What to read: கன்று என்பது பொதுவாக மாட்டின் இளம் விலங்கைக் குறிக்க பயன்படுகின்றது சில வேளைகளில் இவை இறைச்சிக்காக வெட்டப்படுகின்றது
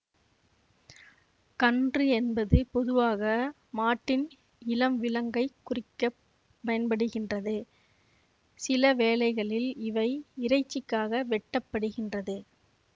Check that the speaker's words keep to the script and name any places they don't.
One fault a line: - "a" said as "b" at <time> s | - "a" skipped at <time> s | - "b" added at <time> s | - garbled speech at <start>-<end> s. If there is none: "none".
none